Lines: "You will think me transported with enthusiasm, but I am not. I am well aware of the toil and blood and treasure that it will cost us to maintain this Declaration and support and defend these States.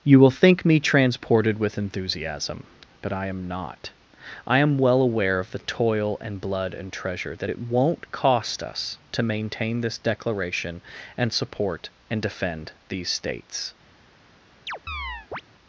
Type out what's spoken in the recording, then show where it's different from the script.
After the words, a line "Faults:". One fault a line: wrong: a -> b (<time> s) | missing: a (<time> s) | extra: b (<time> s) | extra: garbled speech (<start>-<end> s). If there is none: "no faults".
"You will think me transported with enthusiasm, but I am not. I am well aware of the toil and blood and treasure that it won't cost us to maintain this Declaration and support and defend these States.
Faults:
wrong: will -> won't (7.7 s)